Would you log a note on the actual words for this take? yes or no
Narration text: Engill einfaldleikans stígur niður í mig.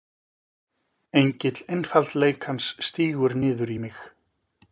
no